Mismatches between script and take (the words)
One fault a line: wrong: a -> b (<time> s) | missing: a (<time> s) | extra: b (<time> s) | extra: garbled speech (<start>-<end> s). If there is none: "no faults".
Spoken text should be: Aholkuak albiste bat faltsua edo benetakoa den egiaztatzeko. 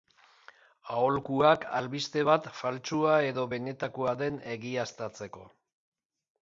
no faults